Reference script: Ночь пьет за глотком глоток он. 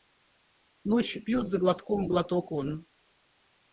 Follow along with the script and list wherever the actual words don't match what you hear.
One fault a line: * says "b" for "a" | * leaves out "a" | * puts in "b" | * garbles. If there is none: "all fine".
all fine